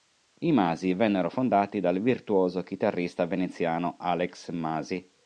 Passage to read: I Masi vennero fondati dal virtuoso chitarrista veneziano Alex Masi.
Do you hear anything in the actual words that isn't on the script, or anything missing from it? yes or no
no